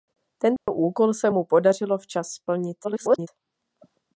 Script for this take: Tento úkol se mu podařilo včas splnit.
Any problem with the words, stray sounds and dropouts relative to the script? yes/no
yes